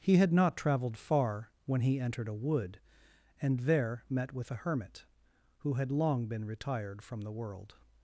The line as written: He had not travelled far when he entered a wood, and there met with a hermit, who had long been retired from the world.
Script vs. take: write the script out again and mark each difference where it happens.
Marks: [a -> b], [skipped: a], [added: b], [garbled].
He had not travelled far when he entered a wood, and there met with a hermit, who had long been retired from the world.